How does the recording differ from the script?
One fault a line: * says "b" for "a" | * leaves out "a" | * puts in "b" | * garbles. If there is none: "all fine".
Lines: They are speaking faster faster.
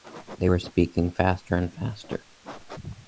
* says "were" for "are"
* puts in "and"